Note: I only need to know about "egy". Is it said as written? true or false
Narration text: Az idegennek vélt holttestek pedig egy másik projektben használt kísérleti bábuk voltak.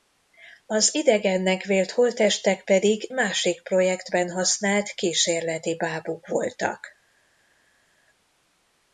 false